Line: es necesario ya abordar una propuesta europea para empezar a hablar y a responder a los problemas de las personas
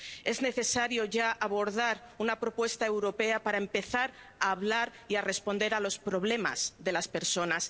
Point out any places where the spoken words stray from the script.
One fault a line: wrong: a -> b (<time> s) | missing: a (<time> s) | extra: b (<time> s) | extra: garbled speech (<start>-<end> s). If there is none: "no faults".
no faults